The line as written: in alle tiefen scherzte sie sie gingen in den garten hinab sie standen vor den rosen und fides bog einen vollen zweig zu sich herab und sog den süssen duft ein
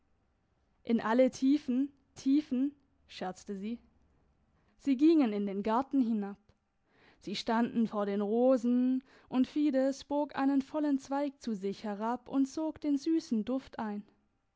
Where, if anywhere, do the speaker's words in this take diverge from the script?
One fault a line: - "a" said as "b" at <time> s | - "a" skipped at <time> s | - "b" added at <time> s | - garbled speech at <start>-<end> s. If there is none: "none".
- "tiefen" added at 2.1 s